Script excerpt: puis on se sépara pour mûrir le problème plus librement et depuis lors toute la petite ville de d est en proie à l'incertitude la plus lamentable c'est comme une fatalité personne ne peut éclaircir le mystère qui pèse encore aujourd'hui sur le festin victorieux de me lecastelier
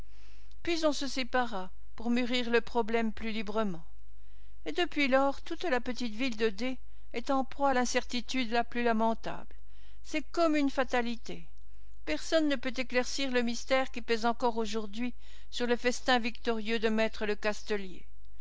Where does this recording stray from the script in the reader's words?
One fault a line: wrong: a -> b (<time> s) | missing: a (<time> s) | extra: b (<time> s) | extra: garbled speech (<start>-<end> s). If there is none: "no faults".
no faults